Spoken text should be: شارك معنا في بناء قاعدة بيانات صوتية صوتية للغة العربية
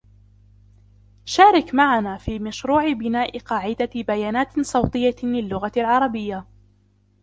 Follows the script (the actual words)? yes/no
no